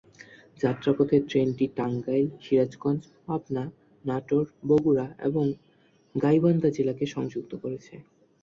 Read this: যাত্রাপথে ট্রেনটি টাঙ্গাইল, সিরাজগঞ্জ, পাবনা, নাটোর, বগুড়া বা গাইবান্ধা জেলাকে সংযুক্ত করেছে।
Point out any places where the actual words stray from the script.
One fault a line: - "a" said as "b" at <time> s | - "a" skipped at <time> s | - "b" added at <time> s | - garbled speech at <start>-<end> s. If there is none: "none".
- "বা" said as "এবং" at 5.2 s